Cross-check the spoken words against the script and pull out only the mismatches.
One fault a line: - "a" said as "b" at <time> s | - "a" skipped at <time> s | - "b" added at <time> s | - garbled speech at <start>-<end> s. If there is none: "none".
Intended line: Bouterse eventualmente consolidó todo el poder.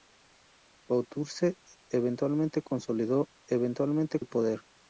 - "todo" said as "eventualmente" at 3.5 s